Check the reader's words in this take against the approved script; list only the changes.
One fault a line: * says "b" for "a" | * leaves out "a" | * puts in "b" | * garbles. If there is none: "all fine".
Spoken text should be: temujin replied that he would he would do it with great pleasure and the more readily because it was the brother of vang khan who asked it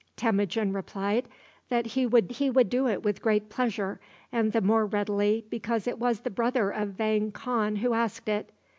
all fine